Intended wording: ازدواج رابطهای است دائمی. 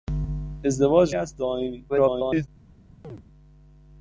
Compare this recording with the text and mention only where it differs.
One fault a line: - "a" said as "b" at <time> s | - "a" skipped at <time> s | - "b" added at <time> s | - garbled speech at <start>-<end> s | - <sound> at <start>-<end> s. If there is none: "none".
- "رابطهای" skipped at 1.1 s
- garbled speech at 1.9-2.5 s
- chirp at 3.0-3.2 s